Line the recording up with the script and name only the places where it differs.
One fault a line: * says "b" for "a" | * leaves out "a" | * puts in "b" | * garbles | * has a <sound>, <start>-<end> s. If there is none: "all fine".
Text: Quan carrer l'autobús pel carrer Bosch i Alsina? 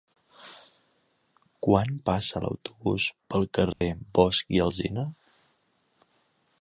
* says "passa" for "carrer"
* has a dropout, 3.7-3.8 s